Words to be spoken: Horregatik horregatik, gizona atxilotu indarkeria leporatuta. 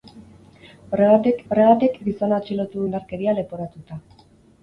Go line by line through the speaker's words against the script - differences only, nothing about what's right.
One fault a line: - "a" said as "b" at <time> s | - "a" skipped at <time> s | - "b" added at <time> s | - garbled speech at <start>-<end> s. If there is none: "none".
none